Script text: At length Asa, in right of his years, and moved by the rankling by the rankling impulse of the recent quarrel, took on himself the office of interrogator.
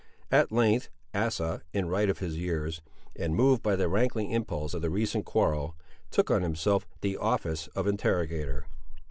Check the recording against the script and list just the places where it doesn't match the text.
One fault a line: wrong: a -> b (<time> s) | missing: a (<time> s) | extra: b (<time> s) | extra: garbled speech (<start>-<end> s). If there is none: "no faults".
missing: by the rankling (4.3 s)